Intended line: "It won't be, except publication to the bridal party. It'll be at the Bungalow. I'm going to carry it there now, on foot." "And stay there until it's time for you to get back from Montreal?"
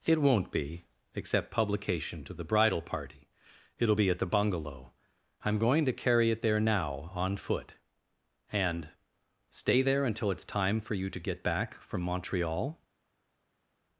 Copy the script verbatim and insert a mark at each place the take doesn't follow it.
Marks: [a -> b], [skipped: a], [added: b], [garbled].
"It won't be, except publication to the bridal party. It'll be at the Bungalow. I'm going to carry it there now, on foot." "And stay there until it's time for you to get back from Montreal?"